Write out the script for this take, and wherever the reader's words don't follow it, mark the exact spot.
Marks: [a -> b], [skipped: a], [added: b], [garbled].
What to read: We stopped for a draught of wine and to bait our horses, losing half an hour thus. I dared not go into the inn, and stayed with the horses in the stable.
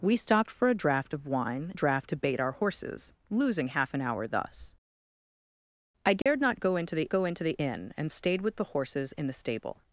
We stopped for a draught of wine [and -> draught] to bait our horses, losing half an hour thus. I dared not go into the [added: go into the] inn, and stayed with the horses in the stable.